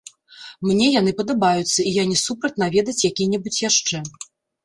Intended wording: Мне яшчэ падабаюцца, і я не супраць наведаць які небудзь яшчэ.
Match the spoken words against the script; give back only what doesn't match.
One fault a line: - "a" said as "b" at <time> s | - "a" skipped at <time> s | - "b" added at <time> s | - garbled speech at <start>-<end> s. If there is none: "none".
- "яшчэ" said as "яны" at 1.0 s